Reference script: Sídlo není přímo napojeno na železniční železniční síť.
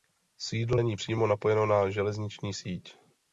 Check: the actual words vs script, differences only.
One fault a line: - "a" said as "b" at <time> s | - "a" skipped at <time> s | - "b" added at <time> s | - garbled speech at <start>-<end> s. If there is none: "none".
- "železniční" skipped at 2.5 s